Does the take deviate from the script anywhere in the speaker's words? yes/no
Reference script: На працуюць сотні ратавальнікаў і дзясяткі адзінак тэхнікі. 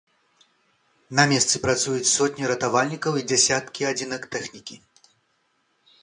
yes